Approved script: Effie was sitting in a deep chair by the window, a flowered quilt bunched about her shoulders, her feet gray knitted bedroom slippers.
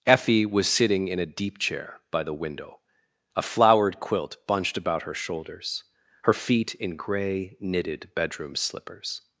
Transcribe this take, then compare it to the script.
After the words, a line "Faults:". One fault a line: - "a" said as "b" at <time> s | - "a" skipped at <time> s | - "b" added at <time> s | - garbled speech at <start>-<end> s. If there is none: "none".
Effie was sitting in a deep chair by the window, a flowered quilt bunched about her shoulders, her feet in gray knitted bedroom slippers.
Faults:
- "in" added at 6.8 s